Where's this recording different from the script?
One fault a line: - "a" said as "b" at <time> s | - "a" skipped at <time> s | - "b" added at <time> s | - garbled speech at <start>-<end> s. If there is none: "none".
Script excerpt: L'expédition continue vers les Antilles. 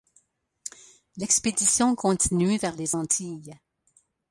none